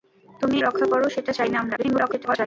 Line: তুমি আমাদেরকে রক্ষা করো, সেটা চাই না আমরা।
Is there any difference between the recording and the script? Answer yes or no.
yes